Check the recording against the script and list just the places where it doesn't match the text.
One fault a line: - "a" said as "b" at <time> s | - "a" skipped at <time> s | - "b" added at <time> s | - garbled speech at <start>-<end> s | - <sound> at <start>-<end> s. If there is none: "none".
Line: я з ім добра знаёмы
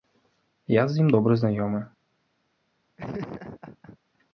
- laugh at 3.0-4.0 s